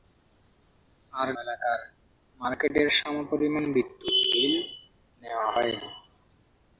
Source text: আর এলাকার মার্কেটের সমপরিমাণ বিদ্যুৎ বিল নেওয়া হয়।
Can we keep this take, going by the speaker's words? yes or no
yes